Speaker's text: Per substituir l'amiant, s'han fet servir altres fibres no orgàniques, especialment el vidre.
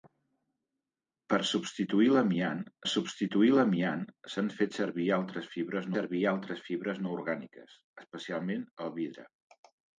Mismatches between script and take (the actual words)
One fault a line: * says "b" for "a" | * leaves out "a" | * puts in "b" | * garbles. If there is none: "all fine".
* puts in "substituir l'amiant"
* puts in "servir altres fibres"